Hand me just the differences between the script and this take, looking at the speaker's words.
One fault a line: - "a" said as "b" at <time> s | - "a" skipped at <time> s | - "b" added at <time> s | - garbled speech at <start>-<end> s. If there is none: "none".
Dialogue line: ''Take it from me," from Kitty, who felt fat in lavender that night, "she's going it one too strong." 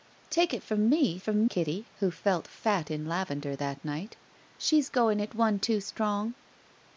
none